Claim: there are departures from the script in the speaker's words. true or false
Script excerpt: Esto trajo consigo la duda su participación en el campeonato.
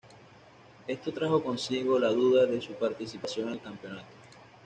true